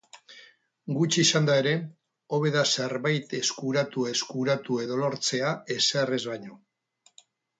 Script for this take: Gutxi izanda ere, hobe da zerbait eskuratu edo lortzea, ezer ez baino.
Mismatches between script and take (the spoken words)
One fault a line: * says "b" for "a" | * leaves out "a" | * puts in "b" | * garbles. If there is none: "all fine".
* puts in "eskuratu"